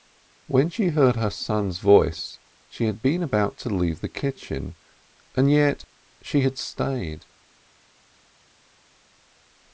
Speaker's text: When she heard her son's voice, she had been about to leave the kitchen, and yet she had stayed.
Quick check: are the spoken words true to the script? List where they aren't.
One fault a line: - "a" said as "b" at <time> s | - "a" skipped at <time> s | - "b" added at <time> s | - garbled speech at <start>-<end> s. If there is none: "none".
none